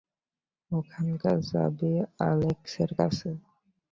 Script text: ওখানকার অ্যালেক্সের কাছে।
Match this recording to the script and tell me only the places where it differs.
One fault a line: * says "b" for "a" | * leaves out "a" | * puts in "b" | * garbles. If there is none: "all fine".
* puts in "চাবি"